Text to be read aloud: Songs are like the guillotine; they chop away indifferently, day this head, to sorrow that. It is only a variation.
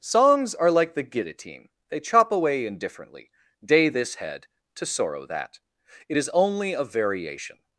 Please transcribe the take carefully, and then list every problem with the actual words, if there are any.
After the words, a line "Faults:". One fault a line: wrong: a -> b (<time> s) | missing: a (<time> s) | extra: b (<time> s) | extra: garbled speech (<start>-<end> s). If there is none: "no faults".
Songs are like the guillotine; they chop away indifferently, day this head, to sorrow that. It is only a variation.
Faults:
no faults